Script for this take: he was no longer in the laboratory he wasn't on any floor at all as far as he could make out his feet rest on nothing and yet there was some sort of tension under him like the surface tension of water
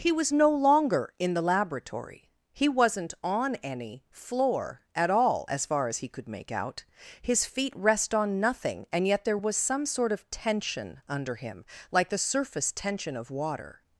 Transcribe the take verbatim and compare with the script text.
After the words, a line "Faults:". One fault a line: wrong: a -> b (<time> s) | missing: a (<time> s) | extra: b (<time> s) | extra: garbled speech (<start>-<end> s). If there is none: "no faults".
he was no longer in the laboratory he wasn't on any floor at all as far as he could make out his feet rest on nothing and yet there was some sort of tension under him like the surface tension of water
Faults:
no faults